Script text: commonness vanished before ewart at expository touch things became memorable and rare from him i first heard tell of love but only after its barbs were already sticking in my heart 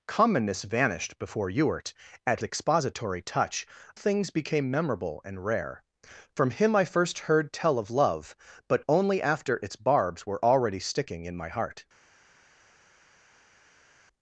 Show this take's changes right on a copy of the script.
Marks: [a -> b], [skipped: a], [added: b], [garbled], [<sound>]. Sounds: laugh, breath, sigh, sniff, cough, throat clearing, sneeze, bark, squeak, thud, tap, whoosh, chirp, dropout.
commonness vanished before ewart at expository touch things became memorable and rare from him i first heard tell of love but only after its barbs were already sticking in my heart